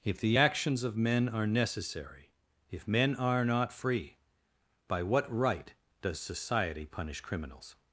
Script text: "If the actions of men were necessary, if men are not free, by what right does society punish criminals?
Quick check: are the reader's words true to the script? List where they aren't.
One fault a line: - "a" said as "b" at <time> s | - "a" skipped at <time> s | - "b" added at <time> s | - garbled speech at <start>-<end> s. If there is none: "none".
- "were" said as "are" at 1.3 s